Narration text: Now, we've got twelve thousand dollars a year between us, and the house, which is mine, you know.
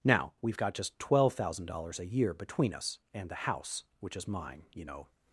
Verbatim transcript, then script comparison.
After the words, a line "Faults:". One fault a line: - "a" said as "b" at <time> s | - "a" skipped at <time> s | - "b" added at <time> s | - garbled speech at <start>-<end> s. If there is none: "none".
Now, we've got just twelve thousand dollars a year between us, and the house, which is mine, you know.
Faults:
- "just" added at 0.7 s